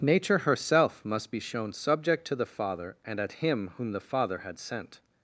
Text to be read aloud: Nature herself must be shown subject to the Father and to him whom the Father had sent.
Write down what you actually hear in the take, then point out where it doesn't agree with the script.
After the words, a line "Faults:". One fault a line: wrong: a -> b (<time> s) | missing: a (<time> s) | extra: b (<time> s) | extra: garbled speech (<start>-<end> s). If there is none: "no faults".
Nature herself must be shown subject to the Father and at him whom the Father had sent.
Faults:
wrong: to -> at (3.2 s)